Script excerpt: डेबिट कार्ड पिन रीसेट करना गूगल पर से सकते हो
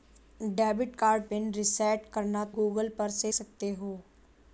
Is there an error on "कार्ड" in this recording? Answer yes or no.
no